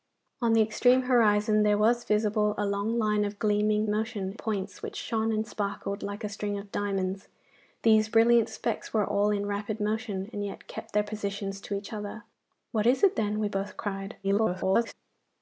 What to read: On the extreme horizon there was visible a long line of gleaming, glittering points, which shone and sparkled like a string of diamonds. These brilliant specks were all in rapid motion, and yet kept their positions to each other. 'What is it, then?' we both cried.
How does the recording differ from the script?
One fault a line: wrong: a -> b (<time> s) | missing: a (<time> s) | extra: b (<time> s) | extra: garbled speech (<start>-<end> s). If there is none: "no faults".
wrong: glittering -> motion (3.9 s)
extra: garbled speech (14.2-14.9 s)